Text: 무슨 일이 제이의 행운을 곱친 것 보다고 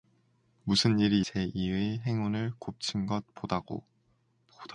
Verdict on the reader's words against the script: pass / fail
pass